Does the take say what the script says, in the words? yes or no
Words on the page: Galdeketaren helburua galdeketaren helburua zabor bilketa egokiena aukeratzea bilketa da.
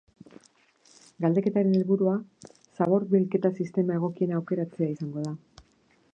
no